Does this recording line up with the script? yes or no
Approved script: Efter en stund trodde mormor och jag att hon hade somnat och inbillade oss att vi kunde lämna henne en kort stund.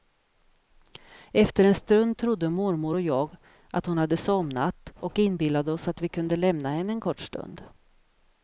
yes